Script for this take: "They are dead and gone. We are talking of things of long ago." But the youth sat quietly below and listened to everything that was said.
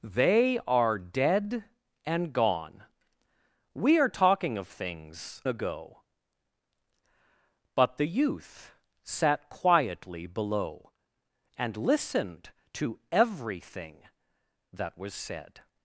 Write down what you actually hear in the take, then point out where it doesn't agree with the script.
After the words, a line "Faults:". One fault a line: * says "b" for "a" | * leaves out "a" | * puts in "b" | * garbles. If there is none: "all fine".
"They are dead and gone. We are talking of things ago." But the youth sat quietly below and listened to everything that was said.
Faults:
* leaves out "of long"